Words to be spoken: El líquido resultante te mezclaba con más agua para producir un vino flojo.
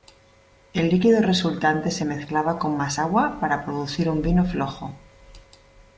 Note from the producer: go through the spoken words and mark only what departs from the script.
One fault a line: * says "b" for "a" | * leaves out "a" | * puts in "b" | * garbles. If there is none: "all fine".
* says "se" for "te"